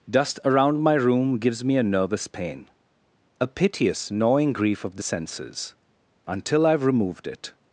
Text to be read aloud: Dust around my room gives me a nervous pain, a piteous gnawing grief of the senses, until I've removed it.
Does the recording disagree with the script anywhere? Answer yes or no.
no